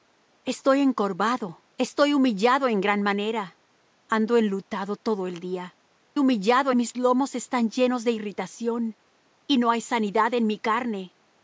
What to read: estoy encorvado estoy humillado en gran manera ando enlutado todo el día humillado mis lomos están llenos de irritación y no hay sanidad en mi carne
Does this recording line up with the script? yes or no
yes